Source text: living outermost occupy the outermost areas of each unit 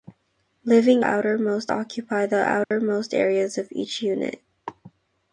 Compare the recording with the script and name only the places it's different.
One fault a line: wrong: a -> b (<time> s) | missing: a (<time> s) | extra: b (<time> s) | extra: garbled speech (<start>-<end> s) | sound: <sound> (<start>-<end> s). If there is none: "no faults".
sound: dropout (2.6-2.7 s)